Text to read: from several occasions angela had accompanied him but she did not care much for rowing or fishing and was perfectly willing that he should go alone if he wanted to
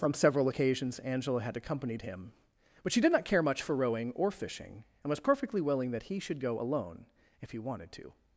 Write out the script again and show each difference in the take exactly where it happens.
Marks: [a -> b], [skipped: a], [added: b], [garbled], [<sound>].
from several occasions angela had accompanied him but she did not care much for rowing or fishing and was perfectly willing that he should go alone if he wanted to